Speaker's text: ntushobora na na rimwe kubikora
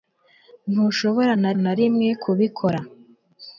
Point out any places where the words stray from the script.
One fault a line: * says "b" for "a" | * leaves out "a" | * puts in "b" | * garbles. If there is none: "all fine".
all fine